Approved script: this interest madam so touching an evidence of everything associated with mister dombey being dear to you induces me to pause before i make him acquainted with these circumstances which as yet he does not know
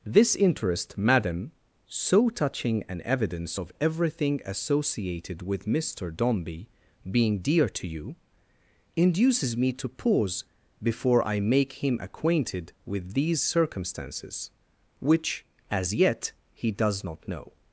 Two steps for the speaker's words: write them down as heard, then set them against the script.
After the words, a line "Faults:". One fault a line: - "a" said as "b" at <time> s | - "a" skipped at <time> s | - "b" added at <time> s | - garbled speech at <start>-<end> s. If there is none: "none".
this interest madam so touching an evidence of everything associated with mister dombey being dear to you induces me to pause before i make him acquainted with these circumstances which as yet he does not know
Faults:
none